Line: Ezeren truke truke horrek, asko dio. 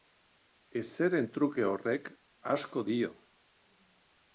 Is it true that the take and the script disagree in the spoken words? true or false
true